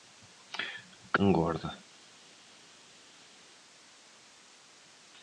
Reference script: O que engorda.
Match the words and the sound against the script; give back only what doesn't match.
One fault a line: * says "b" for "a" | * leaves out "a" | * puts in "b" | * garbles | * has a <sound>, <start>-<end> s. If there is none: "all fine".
all fine